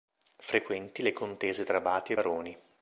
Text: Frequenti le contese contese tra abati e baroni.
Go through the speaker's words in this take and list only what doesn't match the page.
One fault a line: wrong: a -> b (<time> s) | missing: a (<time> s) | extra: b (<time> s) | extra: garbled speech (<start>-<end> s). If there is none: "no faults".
missing: contese (1.6 s)